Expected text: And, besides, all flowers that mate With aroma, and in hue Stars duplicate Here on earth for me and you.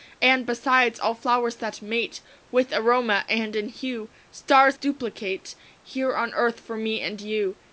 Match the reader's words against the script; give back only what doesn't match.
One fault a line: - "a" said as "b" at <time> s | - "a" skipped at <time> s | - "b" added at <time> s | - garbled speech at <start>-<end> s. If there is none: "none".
none